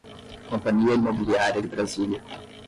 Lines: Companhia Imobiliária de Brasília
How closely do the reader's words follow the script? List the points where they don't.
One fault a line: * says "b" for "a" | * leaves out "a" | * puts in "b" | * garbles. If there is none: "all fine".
all fine